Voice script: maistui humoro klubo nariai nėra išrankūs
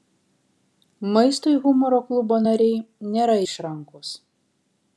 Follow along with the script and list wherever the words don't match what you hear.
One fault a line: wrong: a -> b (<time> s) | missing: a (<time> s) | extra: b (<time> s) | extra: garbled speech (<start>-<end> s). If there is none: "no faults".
no faults